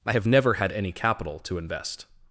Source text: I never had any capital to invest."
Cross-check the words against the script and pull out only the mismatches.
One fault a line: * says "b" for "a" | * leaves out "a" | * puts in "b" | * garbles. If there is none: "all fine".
* puts in "have"